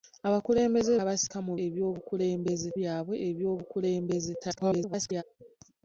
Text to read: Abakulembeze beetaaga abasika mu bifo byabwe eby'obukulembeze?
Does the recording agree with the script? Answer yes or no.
no